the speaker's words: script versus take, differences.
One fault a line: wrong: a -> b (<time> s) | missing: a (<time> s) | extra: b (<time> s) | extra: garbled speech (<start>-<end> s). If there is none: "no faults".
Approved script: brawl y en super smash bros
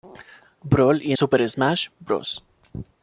no faults